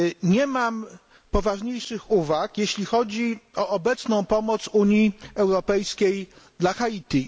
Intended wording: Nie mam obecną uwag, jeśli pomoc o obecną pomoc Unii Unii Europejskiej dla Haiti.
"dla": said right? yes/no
yes